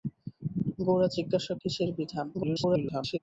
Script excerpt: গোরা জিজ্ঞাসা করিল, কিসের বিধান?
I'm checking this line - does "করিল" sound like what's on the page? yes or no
no